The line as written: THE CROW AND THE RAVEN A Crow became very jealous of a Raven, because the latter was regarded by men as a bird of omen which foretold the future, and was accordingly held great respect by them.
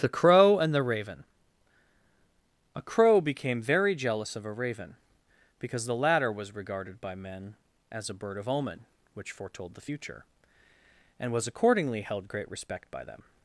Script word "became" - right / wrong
right